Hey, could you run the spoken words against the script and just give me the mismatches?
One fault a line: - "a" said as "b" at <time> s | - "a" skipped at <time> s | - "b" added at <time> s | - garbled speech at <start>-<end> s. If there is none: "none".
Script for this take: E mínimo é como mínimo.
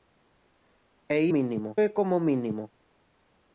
none